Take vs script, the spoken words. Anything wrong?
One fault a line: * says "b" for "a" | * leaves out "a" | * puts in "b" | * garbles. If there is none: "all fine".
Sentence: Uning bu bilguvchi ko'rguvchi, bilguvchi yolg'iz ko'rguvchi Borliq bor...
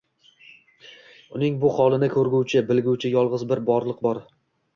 * says "holini" for "bilguvchi"
* says "bir" for "ko'rguvchi"